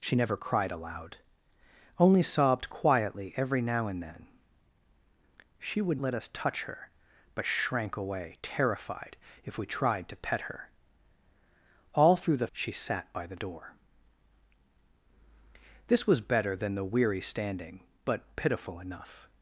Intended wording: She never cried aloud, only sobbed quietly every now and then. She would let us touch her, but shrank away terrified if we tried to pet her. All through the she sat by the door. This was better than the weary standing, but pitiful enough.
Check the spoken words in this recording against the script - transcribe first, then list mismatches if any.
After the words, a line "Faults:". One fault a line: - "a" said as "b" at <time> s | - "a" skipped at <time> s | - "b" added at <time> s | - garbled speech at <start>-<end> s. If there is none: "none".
She never cried aloud, only sobbed quietly every now and then. She would let us touch her, but shrank away terrified if we tried to pet her. All through the she sat by the door. This was better than the weary standing, but pitiful enough.
Faults:
none